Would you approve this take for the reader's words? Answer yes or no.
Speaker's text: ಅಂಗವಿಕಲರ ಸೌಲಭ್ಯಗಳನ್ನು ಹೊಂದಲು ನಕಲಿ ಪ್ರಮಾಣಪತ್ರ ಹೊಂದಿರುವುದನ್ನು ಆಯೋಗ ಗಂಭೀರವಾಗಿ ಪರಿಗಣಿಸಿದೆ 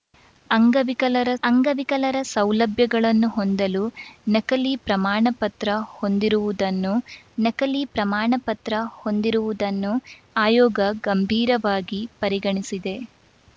no